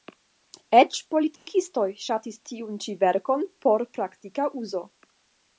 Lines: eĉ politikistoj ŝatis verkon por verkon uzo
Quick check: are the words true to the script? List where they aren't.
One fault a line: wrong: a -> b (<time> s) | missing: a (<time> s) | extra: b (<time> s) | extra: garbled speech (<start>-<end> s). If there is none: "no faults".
extra: tiun ĉi (2.5 s)
wrong: verkon -> praktika (4.0 s)